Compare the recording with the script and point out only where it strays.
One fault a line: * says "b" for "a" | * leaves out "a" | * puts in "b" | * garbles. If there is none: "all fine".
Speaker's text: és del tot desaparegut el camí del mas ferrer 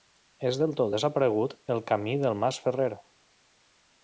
all fine